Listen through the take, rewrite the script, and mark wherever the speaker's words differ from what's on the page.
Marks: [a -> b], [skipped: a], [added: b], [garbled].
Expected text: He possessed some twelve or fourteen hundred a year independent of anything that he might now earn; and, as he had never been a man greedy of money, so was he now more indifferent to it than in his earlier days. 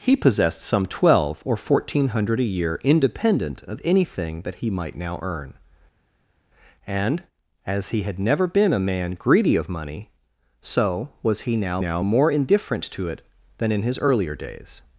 He possessed some twelve or fourteen hundred a year independent of anything that he might now earn; and, as he had never been a man greedy of money, so was he now [added: now] more indifferent to it than in his earlier days.